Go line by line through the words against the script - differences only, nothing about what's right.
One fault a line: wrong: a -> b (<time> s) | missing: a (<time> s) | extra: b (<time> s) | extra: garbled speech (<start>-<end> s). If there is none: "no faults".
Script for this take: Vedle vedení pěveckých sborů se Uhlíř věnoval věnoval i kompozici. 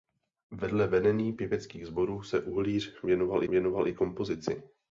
no faults